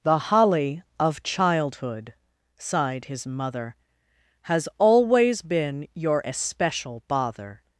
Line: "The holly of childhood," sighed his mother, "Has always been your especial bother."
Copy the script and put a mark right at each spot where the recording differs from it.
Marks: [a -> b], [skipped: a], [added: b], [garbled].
"The holly of childhood," sighed his mother, "Has always been your especial bother."